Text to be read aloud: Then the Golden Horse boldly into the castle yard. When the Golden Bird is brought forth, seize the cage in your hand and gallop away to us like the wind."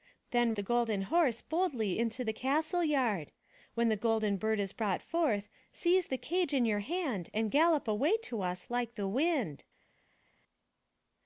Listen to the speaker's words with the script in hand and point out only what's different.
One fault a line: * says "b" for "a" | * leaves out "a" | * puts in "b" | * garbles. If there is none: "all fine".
all fine